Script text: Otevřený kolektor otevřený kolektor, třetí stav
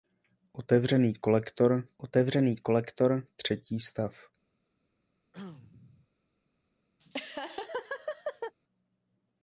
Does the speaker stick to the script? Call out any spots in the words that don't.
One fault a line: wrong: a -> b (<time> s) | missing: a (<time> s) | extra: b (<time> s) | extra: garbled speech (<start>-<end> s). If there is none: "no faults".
no faults